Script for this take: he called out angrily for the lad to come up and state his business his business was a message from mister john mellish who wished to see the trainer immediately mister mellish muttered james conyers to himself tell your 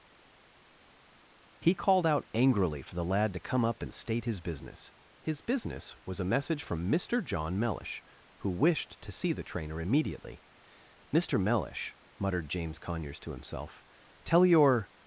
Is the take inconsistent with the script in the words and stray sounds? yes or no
no